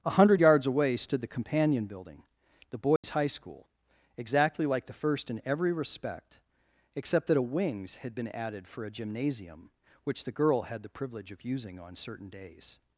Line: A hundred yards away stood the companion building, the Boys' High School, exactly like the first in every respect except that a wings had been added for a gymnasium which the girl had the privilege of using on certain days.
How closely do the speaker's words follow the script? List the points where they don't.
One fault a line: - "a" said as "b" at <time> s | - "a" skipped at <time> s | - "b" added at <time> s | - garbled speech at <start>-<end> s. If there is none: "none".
none